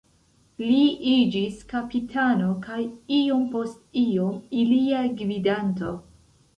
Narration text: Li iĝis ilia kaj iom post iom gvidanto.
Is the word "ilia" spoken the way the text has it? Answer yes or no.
no